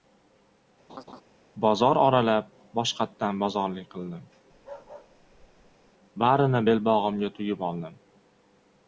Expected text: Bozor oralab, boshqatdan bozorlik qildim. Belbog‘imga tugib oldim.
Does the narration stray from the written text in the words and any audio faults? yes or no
yes